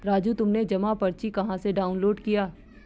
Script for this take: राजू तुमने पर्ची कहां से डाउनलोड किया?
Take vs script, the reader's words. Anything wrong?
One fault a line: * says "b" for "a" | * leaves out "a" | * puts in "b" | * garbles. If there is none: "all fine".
* puts in "जमा"